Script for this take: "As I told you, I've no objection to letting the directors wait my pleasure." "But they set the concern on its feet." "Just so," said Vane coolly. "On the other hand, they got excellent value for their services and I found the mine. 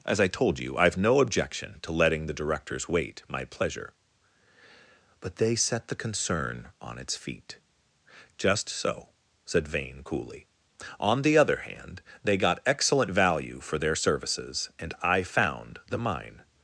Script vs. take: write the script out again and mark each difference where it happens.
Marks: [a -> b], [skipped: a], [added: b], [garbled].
"As I told you, I've no objection to letting the directors wait my pleasure." "But they set the concern on its feet." "Just so," said Vane coolly. "On the other hand, they got excellent value for their services and I found the mine.